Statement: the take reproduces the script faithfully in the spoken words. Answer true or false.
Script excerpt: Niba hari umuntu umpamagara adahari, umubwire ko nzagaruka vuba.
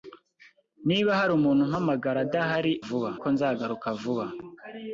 false